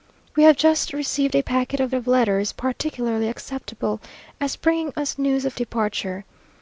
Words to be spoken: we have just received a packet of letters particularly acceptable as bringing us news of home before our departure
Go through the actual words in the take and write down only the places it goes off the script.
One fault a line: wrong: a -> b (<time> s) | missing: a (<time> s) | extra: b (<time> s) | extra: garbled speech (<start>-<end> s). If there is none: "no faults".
extra: of (1.9 s)
missing: home before our (5.6 s)